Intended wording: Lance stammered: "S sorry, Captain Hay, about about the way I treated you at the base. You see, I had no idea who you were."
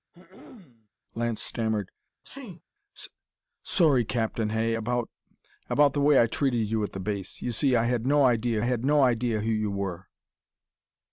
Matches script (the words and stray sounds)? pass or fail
fail